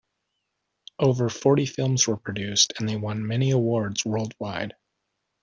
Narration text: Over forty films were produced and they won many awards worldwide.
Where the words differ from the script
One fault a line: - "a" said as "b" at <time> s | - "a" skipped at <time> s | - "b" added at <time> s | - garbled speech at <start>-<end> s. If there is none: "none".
none